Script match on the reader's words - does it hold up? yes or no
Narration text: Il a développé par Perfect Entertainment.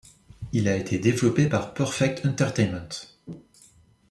no